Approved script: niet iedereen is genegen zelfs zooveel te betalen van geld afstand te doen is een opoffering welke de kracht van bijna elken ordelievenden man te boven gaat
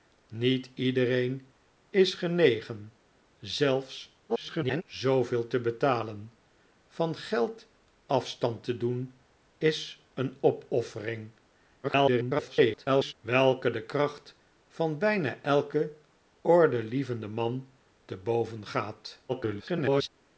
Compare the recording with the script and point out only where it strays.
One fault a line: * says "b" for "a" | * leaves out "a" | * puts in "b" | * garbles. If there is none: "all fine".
* garbles
* garbles
* garbles